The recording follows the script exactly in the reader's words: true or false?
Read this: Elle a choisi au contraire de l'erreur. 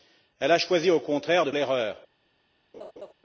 true